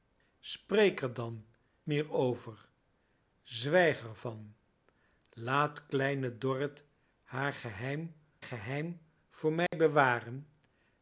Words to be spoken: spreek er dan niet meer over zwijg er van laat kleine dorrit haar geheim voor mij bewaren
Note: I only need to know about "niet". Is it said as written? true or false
false